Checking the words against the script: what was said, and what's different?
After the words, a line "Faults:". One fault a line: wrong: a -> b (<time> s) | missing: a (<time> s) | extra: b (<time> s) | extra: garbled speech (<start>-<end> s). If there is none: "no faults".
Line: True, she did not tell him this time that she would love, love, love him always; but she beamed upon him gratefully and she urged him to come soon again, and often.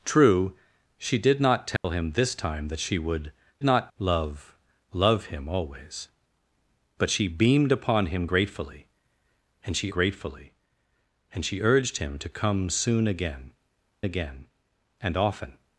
True, she did not tell him this time that she would not, love, love him always; but she beamed upon him gratefully and she gratefully and she urged him to come soon again again, and often.
Faults:
wrong: love -> not (3.6 s)
extra: gratefully and she (9.9 s)
extra: again (14.0 s)